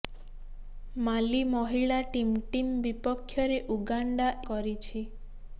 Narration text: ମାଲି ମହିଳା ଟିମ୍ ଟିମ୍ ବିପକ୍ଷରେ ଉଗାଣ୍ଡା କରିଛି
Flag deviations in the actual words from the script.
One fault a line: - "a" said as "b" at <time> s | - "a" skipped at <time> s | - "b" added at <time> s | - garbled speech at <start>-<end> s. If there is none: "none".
none